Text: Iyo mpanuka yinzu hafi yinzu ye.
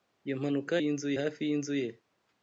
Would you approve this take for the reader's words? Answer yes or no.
yes